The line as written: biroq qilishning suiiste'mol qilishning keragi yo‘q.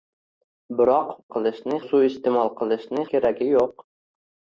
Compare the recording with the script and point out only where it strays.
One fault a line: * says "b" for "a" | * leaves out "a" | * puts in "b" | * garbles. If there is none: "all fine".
all fine